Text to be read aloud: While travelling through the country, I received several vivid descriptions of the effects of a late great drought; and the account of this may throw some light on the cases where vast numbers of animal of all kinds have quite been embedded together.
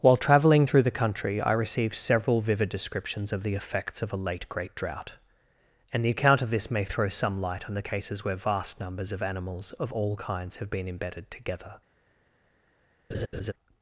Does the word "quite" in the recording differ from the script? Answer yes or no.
yes